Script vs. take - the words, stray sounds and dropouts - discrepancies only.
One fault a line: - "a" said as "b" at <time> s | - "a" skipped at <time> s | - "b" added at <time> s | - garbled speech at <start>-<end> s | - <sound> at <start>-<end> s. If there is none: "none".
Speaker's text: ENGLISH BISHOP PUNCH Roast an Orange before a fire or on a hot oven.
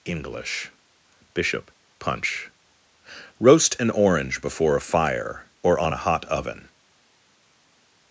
none